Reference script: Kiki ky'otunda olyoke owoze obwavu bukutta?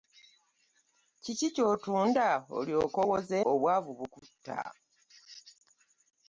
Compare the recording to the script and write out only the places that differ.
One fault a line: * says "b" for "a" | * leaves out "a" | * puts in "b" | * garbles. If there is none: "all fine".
all fine